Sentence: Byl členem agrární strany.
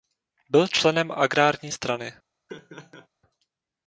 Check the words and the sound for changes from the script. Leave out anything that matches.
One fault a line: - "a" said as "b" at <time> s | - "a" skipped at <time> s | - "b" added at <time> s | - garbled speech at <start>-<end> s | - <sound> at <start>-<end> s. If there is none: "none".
- laugh at 2.5-3.1 s